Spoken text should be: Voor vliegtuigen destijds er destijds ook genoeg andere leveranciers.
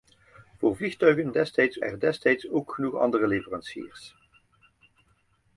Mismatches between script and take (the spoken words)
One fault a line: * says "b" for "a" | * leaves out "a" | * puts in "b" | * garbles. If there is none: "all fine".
all fine